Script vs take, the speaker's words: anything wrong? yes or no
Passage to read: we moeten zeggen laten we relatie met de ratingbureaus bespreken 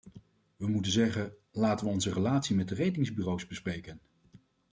yes